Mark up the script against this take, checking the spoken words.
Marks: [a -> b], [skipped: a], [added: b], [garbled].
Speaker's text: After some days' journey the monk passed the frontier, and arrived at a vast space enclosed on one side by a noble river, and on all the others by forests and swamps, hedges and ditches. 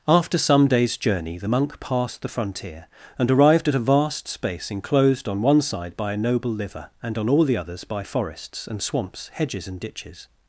After some days' journey the monk passed the frontier, and arrived at a vast space enclosed on one side by a noble [river, -> liver] and on all the others by forests and swamps, hedges and ditches.